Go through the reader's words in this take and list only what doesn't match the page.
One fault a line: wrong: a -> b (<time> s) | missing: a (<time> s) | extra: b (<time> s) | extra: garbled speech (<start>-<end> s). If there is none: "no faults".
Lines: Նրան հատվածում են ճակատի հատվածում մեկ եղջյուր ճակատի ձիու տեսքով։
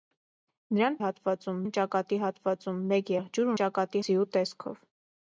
no faults